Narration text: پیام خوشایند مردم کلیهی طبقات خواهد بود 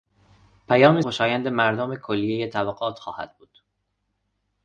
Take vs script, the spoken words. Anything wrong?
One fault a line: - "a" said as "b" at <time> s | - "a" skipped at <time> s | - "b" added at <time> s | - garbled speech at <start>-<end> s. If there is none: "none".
none